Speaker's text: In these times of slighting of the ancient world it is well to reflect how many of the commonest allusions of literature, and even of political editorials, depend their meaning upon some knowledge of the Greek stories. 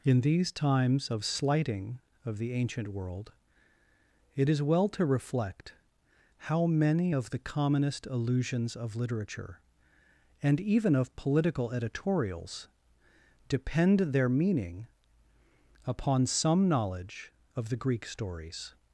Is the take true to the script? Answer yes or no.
yes